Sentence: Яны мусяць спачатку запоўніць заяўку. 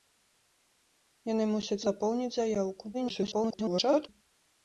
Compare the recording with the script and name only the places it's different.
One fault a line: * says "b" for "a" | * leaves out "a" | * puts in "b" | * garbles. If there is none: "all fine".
* leaves out "спачатку"
* garbles